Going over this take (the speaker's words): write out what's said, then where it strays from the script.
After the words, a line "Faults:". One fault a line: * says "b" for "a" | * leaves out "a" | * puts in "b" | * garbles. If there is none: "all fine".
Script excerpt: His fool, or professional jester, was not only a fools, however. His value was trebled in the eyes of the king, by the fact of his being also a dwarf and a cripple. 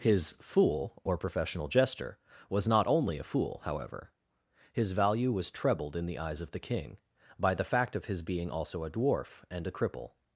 His fool, or professional jester, was not only a fool, however. His value was trebled in the eyes of the king, by the fact of his being also a dwarf and a cripple.
Faults:
* says "fool" for "fools"